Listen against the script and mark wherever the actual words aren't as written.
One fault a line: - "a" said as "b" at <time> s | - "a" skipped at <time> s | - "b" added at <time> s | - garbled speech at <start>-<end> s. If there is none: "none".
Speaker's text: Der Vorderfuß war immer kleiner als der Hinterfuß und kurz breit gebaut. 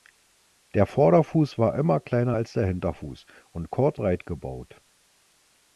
none